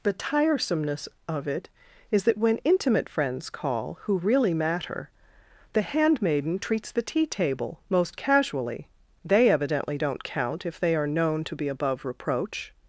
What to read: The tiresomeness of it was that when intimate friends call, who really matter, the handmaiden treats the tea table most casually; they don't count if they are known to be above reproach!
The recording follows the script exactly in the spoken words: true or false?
false